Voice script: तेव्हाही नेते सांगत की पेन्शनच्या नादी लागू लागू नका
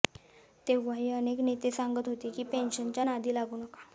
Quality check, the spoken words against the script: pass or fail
fail